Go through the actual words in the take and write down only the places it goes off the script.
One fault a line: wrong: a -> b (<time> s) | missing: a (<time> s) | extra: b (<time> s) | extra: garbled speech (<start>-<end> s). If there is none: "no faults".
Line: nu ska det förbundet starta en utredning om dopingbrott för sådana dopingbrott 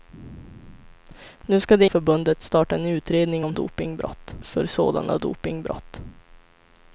no faults